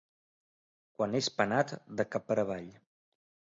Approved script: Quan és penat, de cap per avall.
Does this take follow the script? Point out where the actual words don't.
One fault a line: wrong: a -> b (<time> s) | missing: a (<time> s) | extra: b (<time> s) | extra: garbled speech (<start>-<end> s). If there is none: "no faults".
no faults